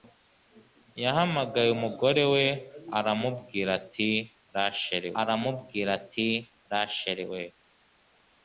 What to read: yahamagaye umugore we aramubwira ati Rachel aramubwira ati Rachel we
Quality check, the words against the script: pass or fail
pass